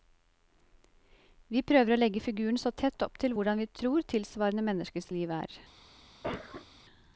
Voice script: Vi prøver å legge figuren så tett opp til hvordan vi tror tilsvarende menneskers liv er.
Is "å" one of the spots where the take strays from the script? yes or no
no